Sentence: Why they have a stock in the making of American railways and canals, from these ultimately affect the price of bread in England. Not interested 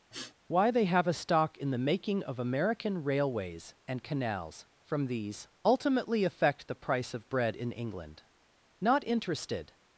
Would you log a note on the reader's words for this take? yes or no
no